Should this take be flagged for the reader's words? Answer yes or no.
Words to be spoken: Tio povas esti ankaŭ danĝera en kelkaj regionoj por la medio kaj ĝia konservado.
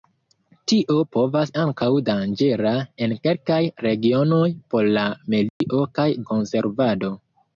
yes